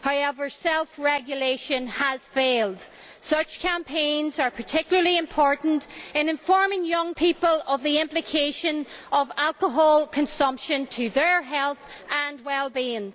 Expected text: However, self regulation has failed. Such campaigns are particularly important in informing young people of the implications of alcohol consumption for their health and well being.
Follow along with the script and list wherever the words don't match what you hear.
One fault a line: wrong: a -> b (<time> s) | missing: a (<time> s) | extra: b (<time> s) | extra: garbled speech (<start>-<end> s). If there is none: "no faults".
no faults